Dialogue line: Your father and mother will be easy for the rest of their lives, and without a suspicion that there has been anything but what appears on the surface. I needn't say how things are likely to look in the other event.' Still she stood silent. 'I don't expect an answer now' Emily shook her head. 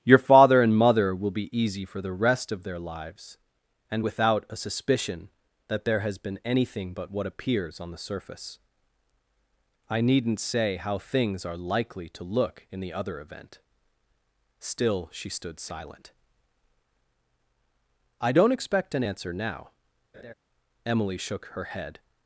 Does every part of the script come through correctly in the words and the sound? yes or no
no